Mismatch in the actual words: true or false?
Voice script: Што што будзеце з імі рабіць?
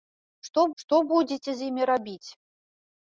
false